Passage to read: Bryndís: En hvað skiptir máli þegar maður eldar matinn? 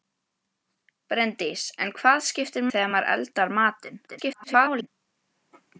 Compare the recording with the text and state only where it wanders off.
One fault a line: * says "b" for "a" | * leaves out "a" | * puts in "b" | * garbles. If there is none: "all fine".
* leaves out "máli"
* garbles